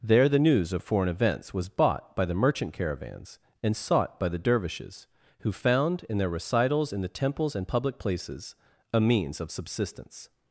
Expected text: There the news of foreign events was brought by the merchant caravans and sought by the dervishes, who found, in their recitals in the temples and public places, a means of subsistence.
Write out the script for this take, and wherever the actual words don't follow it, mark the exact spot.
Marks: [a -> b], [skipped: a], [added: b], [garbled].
There the news of foreign events was [brought -> bought] by the merchant caravans and sought by the dervishes, who found, in their recitals in the temples and public places, a means of subsistence.